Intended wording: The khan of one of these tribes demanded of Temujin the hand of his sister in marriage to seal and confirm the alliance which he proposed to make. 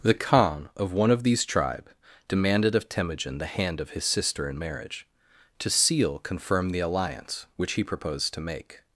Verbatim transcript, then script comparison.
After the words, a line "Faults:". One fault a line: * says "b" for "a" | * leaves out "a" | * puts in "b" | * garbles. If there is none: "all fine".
The khan of one of these tribe demanded of Temujin the hand of his sister in marriage to seal confirm the alliance which he proposed to make.
Faults:
* says "tribe" for "tribes"
* leaves out "and"